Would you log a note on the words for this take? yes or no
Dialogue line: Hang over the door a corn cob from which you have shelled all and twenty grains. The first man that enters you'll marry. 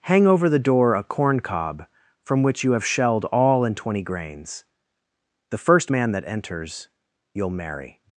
no